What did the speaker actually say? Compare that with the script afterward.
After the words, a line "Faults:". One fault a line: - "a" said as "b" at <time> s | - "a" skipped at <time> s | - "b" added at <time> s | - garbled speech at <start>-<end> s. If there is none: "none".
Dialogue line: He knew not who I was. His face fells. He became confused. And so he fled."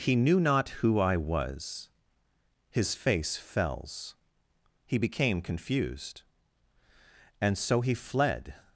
He knew not who I was. His face fells. He became confused. And so he fled."
Faults:
none